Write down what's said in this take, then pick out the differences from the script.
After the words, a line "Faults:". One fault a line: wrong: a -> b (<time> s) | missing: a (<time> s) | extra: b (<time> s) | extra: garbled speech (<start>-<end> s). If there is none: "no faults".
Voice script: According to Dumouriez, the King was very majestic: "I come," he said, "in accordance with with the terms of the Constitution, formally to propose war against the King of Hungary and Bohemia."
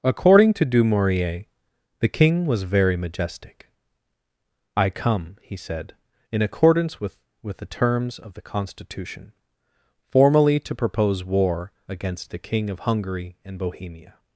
According to Dumouriez, the King was very majestic: "I come," he said, "in accordance with with the terms of the Constitution, formally to propose war against the King of Hungary and Bohemia."
Faults:
no faults